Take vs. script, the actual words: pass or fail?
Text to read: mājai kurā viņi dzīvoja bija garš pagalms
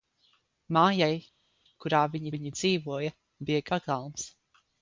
fail